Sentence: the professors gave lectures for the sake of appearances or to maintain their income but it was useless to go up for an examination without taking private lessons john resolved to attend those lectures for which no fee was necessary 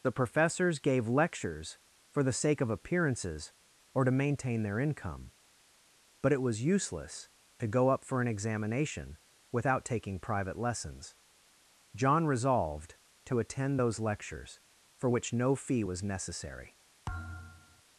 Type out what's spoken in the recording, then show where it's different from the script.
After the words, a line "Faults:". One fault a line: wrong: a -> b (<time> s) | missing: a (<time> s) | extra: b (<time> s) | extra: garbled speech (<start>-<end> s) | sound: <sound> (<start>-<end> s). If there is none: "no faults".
the professors gave lectures for the sake of appearances or to maintain their income but it was useless to go up for an examination without taking private lessons john resolved to attend those lectures for which no fee was necessary
Faults:
sound: thud (17.1-17.8 s)